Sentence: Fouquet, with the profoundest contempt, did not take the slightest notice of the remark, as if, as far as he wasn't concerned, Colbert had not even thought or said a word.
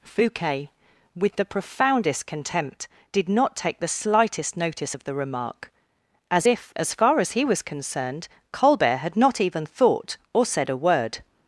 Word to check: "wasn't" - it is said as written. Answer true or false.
false